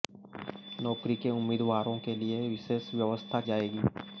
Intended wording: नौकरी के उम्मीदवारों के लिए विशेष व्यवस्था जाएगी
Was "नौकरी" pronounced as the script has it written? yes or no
yes